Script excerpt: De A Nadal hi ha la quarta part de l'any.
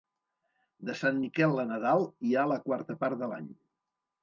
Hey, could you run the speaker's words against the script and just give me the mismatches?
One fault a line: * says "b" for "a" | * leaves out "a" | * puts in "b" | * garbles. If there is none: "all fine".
* puts in "Sant Miquel"